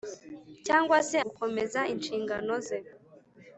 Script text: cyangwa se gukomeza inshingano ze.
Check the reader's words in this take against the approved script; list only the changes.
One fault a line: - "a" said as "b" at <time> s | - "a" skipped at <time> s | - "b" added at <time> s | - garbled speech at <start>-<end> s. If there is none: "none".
none